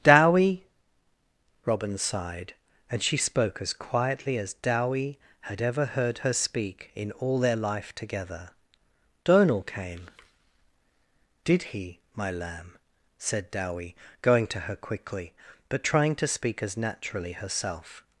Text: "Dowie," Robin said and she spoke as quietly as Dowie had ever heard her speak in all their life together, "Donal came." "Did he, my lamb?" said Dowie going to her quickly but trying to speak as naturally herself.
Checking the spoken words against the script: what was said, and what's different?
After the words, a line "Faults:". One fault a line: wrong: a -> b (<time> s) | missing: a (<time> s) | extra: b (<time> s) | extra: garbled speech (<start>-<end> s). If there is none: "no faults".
"Dowie," Robin sighed and she spoke as quietly as Dowie had ever heard her speak in all their life together, "Donal came." "Did he, my lamb?" said Dowie going to her quickly but trying to speak as naturally herself.
Faults:
wrong: said -> sighed (2.0 s)